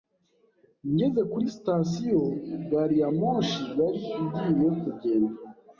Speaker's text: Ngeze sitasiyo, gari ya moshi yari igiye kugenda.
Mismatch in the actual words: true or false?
true